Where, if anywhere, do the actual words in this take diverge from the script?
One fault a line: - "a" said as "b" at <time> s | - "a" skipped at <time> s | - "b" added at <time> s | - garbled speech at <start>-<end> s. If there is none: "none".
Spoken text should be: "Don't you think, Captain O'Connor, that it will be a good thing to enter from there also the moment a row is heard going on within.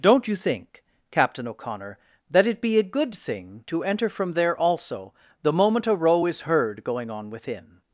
- "will" skipped at 2.6 s